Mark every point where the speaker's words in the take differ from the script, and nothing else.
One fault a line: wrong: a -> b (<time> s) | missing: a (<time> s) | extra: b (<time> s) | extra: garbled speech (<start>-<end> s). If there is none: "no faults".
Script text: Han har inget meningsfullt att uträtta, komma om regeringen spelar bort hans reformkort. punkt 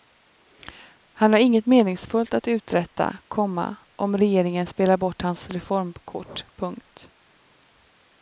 no faults